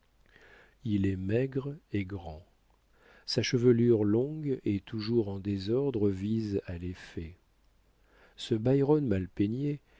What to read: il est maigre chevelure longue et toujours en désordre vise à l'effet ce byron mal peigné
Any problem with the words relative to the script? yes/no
yes